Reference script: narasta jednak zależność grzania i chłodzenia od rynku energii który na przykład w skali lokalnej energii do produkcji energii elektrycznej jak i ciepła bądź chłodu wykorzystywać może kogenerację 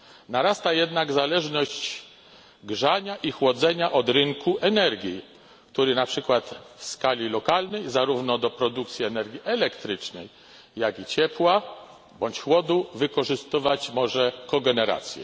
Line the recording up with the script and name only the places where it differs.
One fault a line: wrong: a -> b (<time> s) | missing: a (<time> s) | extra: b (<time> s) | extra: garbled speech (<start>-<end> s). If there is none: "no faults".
wrong: energii -> zarówno (7.9 s)